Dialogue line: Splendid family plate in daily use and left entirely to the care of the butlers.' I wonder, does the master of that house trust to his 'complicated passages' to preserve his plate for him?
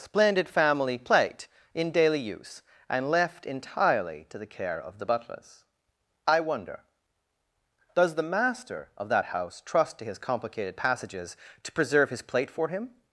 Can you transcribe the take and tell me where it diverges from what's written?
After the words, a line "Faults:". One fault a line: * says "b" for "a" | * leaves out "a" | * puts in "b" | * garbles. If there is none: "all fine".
Splendid family plate in daily use and left entirely to the care of the butlers.' I wonder, does the master of that house trust to his 'complicated passages' to preserve his plate for him?
Faults:
all fine